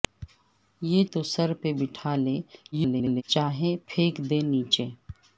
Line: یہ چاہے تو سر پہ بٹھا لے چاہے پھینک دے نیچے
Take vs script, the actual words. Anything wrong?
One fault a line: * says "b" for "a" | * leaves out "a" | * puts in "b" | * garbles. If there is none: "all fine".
* leaves out "چاہے"
* garbles